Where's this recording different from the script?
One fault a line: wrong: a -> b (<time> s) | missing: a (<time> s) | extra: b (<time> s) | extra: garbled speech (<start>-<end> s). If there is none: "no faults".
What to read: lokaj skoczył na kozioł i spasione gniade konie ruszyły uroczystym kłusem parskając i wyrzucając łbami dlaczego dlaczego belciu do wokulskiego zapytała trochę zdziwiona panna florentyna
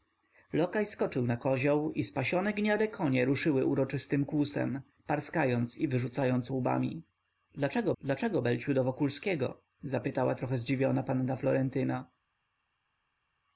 no faults